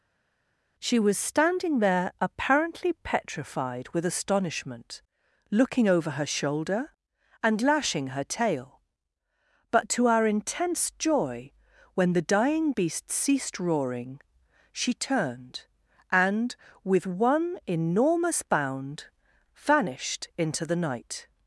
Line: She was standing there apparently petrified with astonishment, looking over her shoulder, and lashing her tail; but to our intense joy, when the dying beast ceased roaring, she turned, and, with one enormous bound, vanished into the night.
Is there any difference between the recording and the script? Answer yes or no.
no